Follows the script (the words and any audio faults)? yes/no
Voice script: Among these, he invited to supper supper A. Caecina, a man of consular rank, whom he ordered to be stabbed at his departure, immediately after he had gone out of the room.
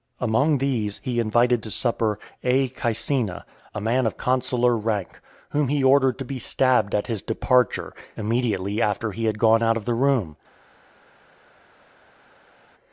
no